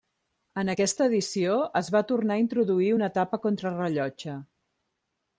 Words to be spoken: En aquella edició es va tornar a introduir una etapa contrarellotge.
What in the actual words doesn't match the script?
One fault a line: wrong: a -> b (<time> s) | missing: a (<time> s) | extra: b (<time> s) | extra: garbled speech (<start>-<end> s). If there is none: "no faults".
wrong: aquella -> aquesta (0.7 s)